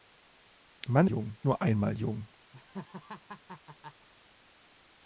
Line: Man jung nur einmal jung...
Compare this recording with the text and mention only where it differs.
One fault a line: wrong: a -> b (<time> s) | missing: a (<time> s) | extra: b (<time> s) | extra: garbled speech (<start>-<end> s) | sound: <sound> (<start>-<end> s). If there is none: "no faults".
sound: laugh (2.5-4.1 s)